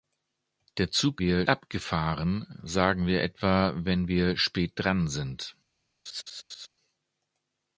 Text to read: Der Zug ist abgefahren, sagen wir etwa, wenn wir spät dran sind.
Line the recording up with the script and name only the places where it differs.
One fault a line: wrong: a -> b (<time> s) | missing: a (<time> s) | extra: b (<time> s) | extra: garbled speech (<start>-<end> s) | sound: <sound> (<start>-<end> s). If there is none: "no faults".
wrong: ist -> wir (1.2 s)
sound: laugh (6.1-6.7 s)